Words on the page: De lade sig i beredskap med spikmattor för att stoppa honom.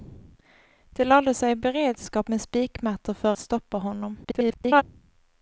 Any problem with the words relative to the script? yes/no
yes